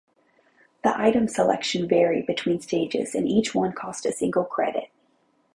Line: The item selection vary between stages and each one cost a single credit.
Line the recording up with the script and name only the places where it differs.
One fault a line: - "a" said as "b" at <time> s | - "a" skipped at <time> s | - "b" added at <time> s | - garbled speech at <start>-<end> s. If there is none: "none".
none